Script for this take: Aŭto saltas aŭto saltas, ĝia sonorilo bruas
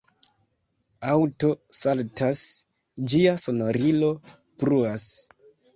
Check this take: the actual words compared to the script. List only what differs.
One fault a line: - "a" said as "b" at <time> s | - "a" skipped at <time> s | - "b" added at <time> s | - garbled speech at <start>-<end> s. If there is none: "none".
- "aŭto saltas" skipped at 2.4 s